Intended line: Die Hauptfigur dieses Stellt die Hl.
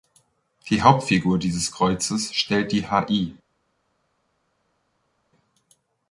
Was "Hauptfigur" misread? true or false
false